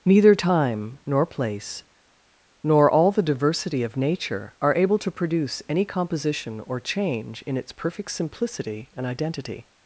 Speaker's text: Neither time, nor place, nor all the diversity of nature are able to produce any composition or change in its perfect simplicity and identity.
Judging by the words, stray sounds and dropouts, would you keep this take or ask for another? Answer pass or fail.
pass